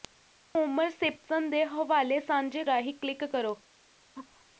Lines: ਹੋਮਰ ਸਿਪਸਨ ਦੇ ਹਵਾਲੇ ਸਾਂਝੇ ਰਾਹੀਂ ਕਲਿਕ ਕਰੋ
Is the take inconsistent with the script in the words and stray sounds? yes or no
yes